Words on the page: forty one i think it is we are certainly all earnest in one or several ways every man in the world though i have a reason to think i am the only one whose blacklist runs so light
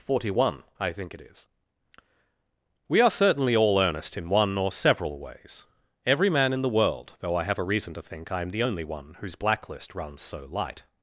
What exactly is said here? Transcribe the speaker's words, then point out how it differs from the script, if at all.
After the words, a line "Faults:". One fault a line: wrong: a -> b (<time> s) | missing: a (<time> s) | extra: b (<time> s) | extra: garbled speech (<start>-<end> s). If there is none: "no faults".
forty one i think it is we are certainly all earnest in one or several ways every man in the world though i have a reason to think i am the only one whose blacklist runs so light
Faults:
no faults